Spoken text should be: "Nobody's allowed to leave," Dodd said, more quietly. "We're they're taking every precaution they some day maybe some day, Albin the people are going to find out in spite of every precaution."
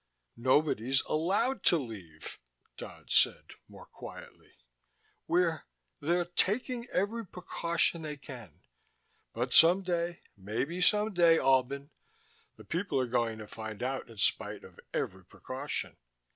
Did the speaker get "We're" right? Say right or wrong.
right